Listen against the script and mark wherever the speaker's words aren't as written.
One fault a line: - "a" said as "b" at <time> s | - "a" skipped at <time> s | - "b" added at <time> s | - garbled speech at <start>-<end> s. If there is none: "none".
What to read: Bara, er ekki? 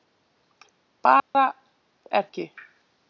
none